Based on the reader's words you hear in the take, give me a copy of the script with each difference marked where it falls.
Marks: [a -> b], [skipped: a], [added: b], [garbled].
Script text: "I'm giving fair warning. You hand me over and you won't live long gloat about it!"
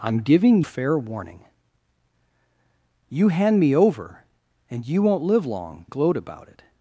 "I'm giving fair warning. You hand me over and you won't live long gloat about it!"